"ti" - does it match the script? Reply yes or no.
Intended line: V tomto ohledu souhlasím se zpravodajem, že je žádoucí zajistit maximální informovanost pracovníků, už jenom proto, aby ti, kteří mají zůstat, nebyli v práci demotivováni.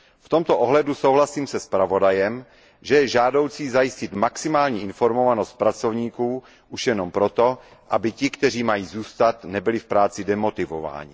yes